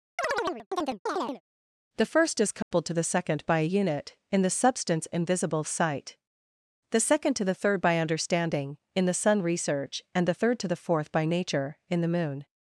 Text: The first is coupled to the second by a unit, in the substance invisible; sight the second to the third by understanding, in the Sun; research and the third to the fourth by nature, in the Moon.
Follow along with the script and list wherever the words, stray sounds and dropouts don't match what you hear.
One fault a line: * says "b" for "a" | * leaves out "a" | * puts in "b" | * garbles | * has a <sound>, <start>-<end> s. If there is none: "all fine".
* has a chirp, 0.2-1.4 s
* has a dropout, 2.6-2.7 s